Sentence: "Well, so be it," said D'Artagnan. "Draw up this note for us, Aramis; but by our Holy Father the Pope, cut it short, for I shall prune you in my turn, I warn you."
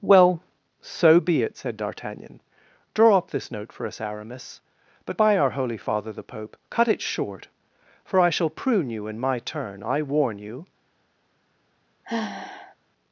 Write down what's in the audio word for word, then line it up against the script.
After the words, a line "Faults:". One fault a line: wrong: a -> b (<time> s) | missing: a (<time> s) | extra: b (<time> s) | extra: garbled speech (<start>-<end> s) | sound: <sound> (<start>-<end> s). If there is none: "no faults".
"Well, so be it," said D'Artagnan. "Draw up this note for us, Aramis; but by our Holy Father the Pope, cut it short, for I shall prune you in my turn, I warn you."
Faults:
sound: sigh (12.0-12.8 s)